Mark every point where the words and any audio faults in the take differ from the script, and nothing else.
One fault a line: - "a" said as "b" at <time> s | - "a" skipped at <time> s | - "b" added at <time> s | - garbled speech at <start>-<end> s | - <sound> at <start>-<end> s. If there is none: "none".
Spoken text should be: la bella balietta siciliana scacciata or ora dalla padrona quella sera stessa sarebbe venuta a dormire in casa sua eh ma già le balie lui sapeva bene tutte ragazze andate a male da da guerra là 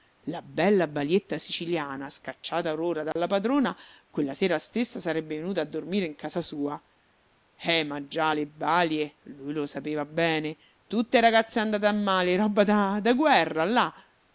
- dropout at 3.1-3.2 s
- "lo" added at 9.5 s
- "roba" added at 12.4 s